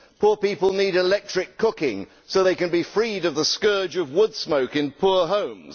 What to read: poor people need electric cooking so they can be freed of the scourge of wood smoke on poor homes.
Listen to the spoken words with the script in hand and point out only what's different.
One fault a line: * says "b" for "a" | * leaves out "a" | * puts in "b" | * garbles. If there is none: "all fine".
* says "in" for "on"